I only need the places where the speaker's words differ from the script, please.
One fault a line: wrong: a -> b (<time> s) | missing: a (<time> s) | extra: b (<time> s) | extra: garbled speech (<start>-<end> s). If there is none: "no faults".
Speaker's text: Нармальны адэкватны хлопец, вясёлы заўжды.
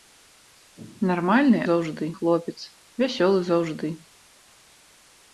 wrong: адэкватны -> заўжды (1.7 s)